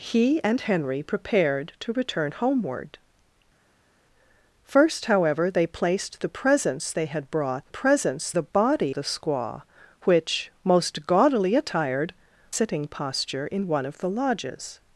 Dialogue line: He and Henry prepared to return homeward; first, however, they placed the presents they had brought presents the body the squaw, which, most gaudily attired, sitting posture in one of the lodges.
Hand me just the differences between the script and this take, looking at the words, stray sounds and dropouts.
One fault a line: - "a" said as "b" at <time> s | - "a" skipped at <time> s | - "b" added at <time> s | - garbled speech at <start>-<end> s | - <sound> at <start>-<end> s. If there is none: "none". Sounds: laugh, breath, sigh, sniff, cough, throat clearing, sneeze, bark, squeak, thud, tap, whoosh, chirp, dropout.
none